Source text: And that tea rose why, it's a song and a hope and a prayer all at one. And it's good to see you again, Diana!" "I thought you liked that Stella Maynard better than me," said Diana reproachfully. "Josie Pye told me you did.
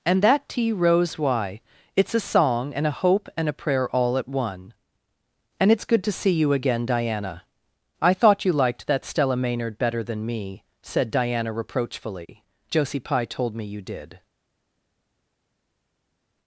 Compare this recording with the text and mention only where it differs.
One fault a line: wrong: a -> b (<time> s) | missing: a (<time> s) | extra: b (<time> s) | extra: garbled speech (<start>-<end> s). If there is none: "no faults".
no faults